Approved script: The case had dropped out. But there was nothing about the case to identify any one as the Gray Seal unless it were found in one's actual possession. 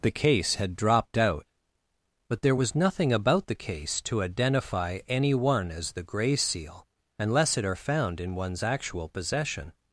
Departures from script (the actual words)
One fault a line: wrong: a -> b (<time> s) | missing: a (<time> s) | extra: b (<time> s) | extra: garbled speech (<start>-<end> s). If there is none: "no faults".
wrong: were -> are (7.6 s)